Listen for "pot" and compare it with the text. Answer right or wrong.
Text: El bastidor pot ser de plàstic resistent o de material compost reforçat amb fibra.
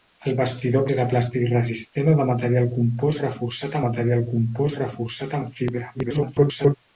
wrong